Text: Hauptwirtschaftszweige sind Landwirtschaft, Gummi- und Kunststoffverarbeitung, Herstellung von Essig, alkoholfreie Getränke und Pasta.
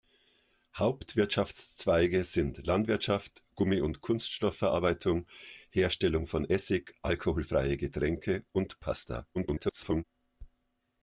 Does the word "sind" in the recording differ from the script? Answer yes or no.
no